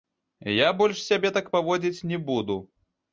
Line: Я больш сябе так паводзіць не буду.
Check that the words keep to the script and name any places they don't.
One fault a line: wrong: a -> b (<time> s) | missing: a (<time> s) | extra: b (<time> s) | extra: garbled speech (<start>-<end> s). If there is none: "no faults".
no faults